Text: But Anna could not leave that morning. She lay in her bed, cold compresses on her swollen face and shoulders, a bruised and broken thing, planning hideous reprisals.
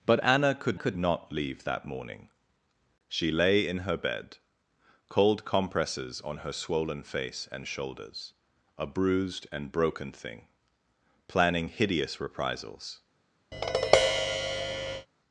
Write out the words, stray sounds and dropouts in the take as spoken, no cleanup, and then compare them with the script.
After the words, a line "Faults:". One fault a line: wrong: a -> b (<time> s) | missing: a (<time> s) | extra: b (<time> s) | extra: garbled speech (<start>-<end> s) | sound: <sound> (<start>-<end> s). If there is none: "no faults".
But Anna could could not leave that morning. She lay in her bed, cold compresses on her swollen face and shoulders, a bruised and broken thing, planning hideous reprisals.
Faults:
extra: could (0.7 s)
sound: tap (13.5-15.1 s)